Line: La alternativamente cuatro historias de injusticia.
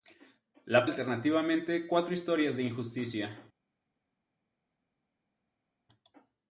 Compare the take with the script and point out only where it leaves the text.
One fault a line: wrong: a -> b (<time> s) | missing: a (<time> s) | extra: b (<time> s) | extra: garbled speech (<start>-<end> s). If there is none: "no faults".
no faults